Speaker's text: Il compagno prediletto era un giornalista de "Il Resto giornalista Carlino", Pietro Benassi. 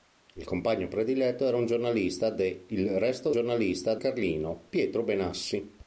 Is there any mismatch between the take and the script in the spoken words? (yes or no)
no